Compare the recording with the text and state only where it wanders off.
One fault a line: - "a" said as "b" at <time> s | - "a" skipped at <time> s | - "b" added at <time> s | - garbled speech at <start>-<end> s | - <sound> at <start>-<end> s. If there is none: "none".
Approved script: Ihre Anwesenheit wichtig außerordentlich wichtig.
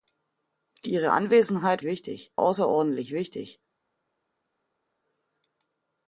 none